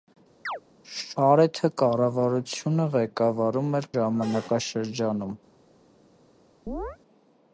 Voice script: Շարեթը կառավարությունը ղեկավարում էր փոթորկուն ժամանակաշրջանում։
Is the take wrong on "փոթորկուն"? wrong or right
wrong